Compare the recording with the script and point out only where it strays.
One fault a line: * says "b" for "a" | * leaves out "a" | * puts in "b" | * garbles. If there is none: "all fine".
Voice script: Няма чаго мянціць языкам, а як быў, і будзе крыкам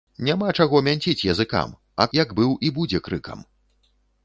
all fine